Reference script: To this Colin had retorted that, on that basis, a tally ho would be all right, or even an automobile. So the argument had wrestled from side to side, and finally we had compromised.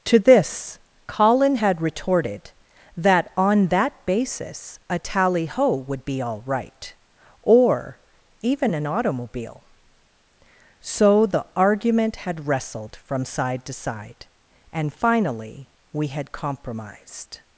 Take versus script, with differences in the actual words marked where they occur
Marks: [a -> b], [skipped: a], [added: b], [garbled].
To this Colin had retorted that, on that basis, a tally ho would be all right, or even an automobile. So the argument had wrestled from side to side, and finally we had compromised.